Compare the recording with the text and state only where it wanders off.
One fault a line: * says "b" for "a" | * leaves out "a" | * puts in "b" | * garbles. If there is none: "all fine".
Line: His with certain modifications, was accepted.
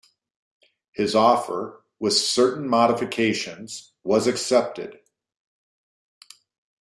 * puts in "offer"